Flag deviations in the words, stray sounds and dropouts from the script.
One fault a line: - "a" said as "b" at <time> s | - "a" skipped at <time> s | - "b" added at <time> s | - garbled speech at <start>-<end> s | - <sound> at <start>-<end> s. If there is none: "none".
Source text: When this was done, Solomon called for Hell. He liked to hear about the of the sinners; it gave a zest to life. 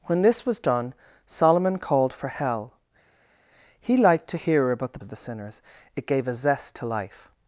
none